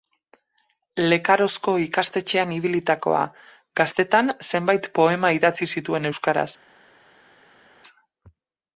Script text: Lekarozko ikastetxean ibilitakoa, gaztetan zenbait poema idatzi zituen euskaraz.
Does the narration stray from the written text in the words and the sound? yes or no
no